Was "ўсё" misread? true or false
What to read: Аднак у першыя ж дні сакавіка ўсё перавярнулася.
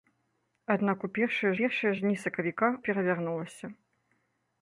true